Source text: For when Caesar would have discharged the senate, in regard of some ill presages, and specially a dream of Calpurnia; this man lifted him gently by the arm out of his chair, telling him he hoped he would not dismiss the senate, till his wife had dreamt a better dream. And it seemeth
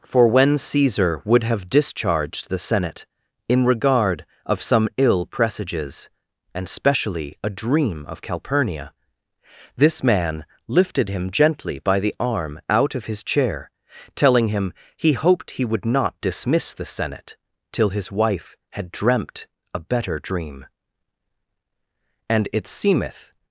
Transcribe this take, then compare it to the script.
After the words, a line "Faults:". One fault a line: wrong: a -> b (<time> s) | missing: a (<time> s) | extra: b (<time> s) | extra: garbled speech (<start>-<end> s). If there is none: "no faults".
For when Caesar would have discharged the senate, in regard of some ill presages, and specially a dream of Calpurnia; this man lifted him gently by the arm out of his chair, telling him he hoped he would not dismiss the senate, till his wife had dreamt a better dream. And it seemeth
Faults:
no faults